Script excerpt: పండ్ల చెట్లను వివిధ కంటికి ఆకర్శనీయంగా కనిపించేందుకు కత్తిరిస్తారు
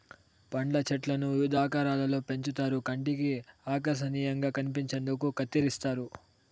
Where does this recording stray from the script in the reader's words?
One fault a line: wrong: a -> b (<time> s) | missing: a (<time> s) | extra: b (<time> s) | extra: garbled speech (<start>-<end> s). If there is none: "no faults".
extra: ఆకారాలలో పెంచుతారు (1.6 s)